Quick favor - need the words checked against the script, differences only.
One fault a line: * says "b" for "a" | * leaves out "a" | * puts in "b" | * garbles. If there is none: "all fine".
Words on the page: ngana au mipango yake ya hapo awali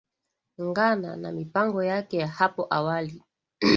* says "na" for "au"